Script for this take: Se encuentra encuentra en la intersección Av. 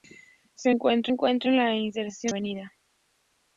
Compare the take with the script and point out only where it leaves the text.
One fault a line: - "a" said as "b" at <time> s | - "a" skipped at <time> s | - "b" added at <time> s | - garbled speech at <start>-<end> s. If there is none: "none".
none